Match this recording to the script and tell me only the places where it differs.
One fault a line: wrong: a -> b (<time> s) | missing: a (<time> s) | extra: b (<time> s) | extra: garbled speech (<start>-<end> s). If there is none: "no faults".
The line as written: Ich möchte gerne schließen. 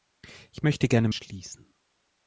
no faults